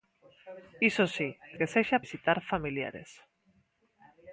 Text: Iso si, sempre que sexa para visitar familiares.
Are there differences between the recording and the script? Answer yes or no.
yes